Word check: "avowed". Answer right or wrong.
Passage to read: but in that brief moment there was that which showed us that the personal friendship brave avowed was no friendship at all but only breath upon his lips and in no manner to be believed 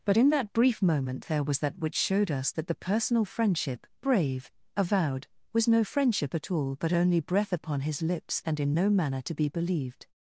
right